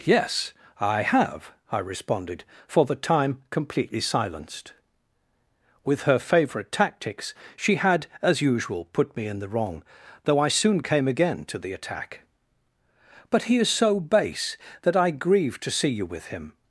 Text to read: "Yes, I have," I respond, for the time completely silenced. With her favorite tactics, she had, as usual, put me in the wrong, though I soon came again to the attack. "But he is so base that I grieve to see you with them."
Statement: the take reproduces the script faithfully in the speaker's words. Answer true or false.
false